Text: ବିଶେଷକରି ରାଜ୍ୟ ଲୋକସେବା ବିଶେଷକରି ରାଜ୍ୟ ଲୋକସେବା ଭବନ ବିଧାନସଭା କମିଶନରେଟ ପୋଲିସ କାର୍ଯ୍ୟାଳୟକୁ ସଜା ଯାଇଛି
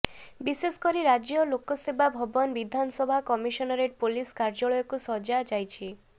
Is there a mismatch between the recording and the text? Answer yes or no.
yes